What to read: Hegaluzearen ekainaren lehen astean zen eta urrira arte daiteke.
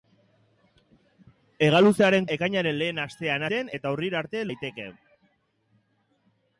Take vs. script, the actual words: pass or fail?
pass